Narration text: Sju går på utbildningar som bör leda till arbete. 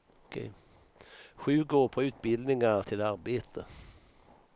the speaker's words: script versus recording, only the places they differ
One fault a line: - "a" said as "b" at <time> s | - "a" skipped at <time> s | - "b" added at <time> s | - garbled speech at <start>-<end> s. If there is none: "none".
- "som bör leda" skipped at 2.8 s